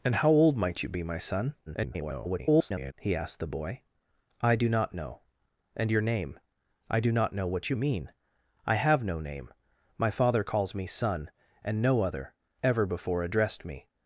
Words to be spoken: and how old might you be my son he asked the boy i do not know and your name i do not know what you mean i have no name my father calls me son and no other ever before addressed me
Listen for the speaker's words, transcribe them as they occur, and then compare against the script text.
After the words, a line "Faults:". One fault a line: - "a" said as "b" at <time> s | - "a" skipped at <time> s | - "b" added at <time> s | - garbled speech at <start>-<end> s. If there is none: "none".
and how old might you be my son [garbled] he asked the boy i do not know and your name i do not know what you mean i have no name my father calls me son and no other ever before addressed me
Faults:
- garbled speech at 1.7-2.9 s